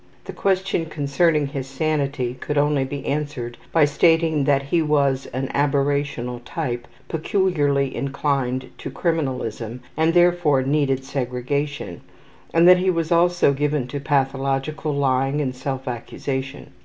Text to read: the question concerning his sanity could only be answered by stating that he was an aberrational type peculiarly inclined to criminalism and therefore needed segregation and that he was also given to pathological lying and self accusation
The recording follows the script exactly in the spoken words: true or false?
true